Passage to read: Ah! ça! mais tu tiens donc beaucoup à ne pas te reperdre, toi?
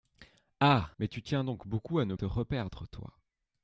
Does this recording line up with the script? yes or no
no